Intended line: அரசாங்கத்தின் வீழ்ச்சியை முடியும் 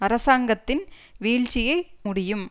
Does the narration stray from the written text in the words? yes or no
no